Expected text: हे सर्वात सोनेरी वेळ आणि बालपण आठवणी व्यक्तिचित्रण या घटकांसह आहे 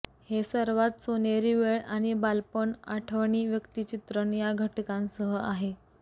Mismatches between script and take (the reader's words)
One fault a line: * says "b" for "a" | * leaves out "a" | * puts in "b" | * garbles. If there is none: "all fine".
all fine